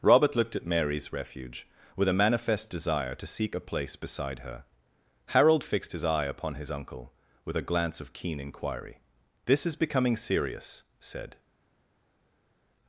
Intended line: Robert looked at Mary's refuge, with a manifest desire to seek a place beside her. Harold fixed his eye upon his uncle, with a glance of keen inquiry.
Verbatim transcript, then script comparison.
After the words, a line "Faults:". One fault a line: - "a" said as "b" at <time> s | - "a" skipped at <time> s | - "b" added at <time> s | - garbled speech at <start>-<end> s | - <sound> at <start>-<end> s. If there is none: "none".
Robert looked at Mary's refuge, with a manifest desire to seek a place beside her. Harold fixed his eye upon his uncle, with a glance of keen inquiry. "This is becoming serious," said
Faults:
- "This is becoming serious said" added at 9.5 s